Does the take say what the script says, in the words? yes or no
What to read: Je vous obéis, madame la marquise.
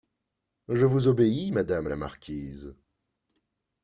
yes